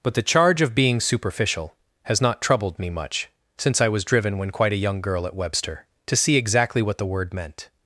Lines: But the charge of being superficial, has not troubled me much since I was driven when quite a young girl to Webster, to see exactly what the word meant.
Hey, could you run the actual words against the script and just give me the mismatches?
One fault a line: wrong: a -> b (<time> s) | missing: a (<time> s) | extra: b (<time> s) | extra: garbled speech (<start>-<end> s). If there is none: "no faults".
wrong: to -> at (5.3 s)